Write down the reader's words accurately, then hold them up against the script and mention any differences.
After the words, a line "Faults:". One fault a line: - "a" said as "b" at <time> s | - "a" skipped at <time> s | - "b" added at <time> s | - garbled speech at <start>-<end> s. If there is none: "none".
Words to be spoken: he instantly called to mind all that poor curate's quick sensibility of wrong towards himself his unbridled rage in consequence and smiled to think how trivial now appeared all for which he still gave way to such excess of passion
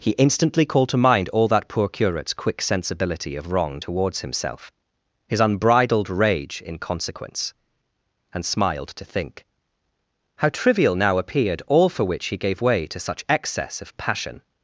he instantly called to mind all that poor curate's quick sensibility of wrong towards himself his unbridled rage in consequence and smiled to think how trivial now appeared all for which he gave way to such excess of passion
Faults:
- "still" skipped at 12.4 s